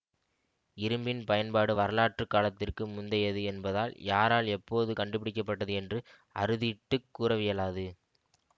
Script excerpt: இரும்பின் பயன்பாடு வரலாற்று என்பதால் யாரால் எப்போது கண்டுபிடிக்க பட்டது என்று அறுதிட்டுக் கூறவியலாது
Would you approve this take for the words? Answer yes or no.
no